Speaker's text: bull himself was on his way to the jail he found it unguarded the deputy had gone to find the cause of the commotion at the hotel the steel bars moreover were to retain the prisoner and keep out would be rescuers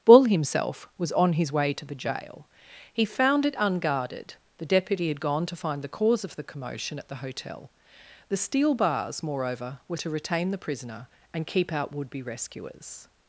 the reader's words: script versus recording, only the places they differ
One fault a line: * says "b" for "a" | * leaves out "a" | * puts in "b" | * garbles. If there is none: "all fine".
all fine